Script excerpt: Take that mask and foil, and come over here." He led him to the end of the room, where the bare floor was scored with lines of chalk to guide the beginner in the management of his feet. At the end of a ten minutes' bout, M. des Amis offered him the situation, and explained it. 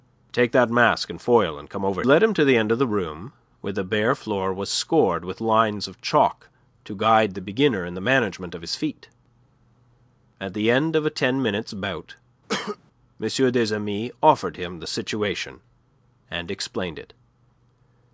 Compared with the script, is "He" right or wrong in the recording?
wrong